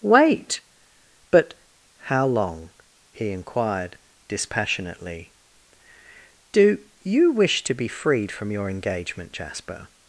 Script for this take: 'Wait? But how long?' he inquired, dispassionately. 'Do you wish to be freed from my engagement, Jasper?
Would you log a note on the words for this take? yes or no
yes